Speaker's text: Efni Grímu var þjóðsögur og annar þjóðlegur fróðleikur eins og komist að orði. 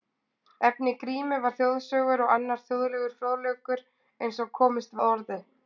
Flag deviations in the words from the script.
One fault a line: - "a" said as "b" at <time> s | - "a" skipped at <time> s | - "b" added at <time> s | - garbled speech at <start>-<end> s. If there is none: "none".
none